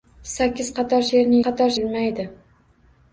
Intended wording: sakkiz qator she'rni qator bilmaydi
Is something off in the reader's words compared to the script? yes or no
no